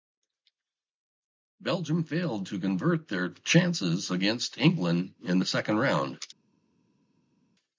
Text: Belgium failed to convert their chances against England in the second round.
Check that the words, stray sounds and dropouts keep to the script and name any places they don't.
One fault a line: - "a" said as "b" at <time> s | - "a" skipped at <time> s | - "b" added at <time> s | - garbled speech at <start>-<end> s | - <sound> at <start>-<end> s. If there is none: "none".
none